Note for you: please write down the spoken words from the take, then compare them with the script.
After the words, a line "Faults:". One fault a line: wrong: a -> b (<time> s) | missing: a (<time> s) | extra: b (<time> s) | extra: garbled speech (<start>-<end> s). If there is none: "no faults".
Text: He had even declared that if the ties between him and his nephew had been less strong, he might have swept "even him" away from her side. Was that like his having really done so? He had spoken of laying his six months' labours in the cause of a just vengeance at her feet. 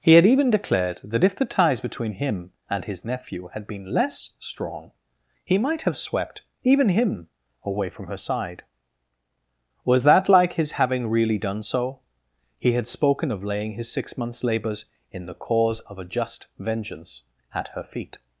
He had even declared that if the ties between him and his nephew had been less strong, he might have swept "even him" away from her side. Was that like his having really done so? He had spoken of laying his six months' labours in the cause of a just vengeance at her feet.
Faults:
no faults